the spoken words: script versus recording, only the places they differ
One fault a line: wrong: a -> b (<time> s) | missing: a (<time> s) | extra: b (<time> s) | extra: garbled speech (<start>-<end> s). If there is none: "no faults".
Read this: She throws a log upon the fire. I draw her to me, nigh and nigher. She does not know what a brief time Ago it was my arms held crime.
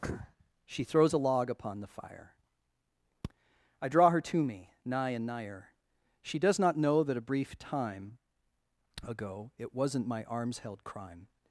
wrong: what -> that (7.0 s)
wrong: was -> wasn't (9.7 s)